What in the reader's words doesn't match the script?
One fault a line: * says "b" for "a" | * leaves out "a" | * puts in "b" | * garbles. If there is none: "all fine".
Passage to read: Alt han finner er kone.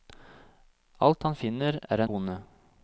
all fine